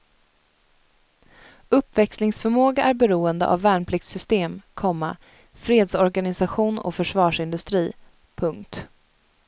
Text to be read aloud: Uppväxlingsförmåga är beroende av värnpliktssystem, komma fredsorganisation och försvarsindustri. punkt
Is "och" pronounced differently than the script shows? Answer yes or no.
no